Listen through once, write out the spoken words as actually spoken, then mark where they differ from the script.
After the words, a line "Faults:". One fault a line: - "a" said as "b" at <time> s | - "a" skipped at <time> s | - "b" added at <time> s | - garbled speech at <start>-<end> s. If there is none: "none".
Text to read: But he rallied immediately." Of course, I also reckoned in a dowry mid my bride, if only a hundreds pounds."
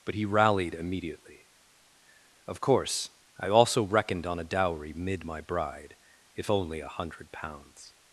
But he rallied immediately." Of course, I also reckoned on a dowry mid my bride, if only a hundred pounds."
Faults:
- "in" said as "on" at 4.2 s
- "hundreds" said as "hundred" at 6.9 s